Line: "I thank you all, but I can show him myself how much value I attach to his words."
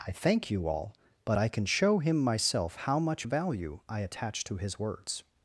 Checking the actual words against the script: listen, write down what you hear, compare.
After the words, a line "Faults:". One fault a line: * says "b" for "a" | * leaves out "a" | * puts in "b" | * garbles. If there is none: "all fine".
"I thank you all, but I can show him myself how much value I attach to his words."
Faults:
all fine